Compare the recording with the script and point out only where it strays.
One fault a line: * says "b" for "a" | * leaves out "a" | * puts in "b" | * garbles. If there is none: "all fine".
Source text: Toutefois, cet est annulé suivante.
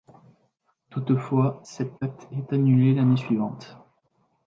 * puts in "acte"
* puts in "l'année"